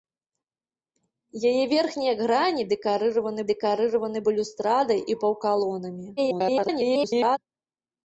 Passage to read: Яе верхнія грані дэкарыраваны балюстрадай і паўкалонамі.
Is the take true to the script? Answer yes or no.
no